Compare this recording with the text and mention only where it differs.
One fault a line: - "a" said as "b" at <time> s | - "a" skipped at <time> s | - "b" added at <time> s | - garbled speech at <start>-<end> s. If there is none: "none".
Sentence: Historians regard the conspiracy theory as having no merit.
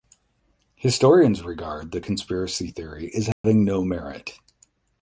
none